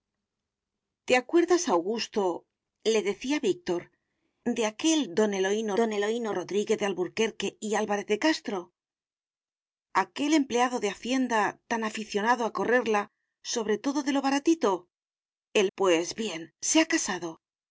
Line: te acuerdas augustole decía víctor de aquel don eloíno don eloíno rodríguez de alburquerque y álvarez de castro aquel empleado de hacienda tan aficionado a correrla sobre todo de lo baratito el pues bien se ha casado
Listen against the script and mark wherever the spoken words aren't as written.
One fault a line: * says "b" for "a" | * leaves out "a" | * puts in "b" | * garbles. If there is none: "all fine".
all fine